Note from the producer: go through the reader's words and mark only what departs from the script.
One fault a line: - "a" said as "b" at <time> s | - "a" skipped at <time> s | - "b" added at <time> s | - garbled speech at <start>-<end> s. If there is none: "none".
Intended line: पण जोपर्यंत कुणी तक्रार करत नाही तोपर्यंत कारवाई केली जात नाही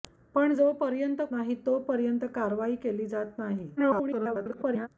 - "कुणी तक्रार करत" skipped at 1.2 s
- garbled speech at 3.8-4.9 s